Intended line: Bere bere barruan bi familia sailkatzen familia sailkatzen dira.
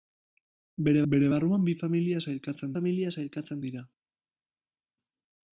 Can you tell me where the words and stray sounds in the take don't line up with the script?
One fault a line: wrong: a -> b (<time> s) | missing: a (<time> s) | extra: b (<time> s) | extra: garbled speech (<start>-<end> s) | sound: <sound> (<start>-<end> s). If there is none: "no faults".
no faults